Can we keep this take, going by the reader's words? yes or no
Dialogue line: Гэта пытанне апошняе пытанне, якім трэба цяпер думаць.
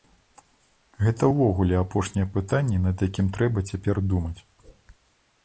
no